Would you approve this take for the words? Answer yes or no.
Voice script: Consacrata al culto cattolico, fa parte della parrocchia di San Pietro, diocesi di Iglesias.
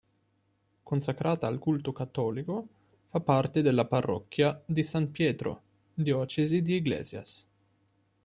yes